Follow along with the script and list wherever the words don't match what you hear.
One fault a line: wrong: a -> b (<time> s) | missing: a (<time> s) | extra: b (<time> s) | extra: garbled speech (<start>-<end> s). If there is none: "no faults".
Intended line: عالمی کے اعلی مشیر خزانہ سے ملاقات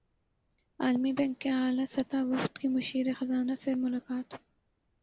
extra: بینک (1.1 s)
extra: سطحی وفد کی (1.9 s)